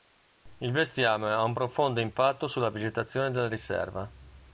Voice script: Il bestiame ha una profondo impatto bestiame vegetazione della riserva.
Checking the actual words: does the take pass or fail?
fail